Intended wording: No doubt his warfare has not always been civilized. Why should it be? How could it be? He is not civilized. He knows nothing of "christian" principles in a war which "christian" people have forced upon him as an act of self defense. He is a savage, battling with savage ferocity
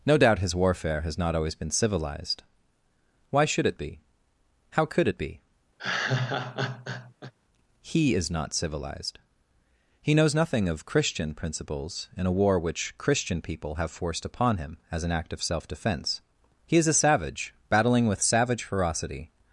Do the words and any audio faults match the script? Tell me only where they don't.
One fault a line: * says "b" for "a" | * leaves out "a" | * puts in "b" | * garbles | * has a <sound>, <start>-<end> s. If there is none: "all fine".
* has a laugh, 5.8-7.3 s